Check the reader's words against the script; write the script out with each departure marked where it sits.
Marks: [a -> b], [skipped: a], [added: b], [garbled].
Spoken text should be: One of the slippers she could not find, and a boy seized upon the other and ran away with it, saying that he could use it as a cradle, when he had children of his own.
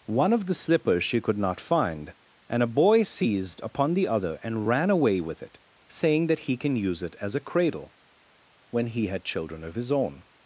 One of the slippers she could not find, and a boy seized upon the other and ran away with it, saying that he [could -> can] use it as a cradle, when he had children of his own.